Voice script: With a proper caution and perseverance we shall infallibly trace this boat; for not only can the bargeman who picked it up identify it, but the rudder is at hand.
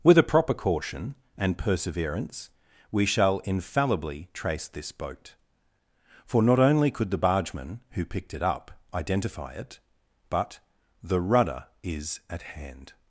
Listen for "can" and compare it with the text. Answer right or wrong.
wrong